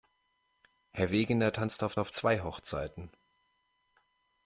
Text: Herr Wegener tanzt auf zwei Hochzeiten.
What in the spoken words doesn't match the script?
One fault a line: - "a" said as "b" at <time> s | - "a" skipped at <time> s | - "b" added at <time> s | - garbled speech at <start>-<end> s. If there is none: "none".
- "auf" added at 2.0 s